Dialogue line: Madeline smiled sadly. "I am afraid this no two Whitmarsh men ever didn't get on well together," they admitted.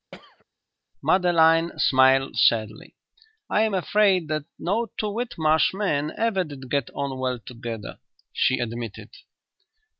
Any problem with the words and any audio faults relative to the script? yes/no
yes